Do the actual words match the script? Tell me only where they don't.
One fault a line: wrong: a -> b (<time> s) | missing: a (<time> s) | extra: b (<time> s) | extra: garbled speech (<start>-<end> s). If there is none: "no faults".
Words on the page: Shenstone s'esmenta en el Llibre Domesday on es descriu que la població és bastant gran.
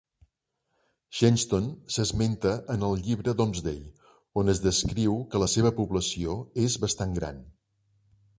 extra: seva (5.6 s)